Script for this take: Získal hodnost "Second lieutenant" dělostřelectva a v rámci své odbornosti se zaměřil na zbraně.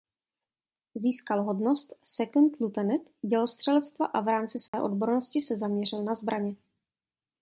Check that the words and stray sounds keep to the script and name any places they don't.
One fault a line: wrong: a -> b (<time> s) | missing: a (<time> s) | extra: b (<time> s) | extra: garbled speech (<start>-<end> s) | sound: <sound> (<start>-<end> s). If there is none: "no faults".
sound: dropout (4.7-4.7 s)